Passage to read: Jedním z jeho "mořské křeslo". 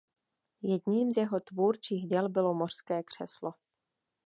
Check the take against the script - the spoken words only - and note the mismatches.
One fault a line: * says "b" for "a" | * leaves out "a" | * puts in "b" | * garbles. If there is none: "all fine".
* puts in "tvůrčích děl bylo"